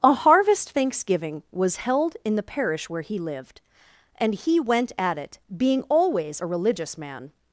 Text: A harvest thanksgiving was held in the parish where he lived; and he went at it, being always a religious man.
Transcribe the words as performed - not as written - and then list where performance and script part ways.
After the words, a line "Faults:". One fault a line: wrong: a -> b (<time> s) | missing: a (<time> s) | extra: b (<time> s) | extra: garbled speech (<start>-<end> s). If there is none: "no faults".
A harvest thanksgiving was held in the parish where he lived; and he went at it, being always a religious man.
Faults:
no faults